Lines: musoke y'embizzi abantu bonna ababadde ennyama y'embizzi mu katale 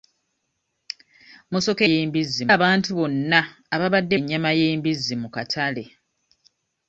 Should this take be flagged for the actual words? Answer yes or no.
no